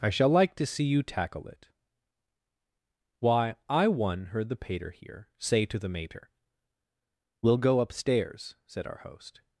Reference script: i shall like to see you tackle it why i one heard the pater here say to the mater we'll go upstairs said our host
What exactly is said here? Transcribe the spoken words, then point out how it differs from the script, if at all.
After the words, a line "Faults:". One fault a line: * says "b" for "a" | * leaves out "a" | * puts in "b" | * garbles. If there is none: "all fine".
i shall like to see you tackle it why i one heard the pater here say to the mater we'll go upstairs said our host
Faults:
all fine